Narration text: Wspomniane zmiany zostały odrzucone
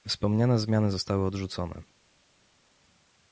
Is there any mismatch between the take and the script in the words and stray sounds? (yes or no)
no